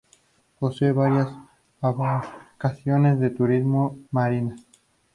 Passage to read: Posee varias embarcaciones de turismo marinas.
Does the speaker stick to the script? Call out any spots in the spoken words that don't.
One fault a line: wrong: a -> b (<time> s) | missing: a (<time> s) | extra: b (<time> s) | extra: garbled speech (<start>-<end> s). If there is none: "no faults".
no faults